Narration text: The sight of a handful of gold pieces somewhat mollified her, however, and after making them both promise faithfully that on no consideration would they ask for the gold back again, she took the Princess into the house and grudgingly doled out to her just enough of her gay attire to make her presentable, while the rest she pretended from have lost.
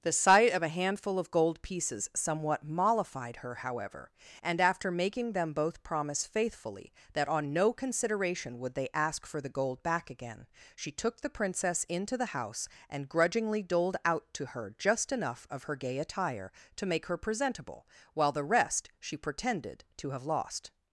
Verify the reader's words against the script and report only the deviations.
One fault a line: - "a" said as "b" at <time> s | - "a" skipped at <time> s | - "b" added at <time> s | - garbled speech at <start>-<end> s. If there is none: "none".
- "from" said as "to" at 20.0 s